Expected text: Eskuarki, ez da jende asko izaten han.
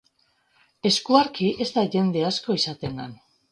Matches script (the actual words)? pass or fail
pass